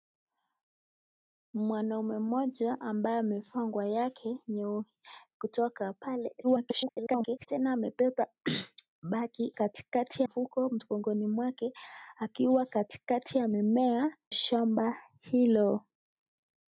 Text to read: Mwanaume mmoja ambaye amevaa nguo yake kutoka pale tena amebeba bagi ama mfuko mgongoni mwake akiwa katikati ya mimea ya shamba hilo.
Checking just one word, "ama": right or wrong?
wrong